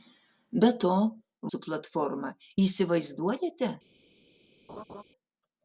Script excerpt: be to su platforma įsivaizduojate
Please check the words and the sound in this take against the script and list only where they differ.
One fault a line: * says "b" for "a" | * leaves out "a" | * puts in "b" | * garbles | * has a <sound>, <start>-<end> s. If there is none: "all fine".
* has a laugh, 4.7-5.0 s